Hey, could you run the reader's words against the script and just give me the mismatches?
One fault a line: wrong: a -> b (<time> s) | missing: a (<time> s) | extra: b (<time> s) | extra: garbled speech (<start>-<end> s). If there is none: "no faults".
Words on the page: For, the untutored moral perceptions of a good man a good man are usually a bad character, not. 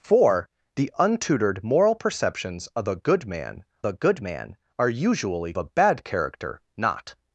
no faults